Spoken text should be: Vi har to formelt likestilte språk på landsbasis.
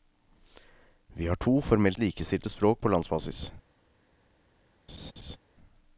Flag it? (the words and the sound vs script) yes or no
yes